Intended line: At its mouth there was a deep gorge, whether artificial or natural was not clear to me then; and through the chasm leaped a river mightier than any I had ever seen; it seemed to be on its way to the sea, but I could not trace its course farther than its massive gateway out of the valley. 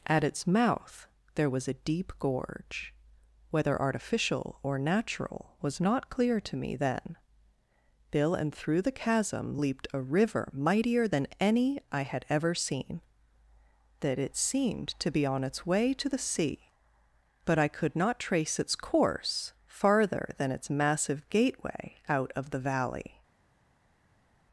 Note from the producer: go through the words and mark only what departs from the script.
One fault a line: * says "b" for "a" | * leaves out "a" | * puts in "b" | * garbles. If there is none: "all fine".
* puts in "bill"
* puts in "that"